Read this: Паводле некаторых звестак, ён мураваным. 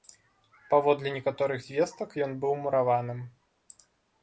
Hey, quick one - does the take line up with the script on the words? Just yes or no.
no